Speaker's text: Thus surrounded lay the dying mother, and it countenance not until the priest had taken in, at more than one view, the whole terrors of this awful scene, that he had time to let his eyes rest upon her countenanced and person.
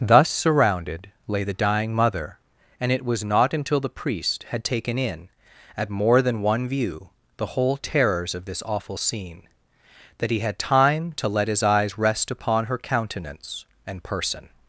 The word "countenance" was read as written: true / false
false